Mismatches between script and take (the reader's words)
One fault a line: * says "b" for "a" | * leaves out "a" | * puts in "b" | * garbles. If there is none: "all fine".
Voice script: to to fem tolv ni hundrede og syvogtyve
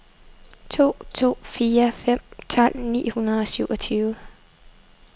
* puts in "fire"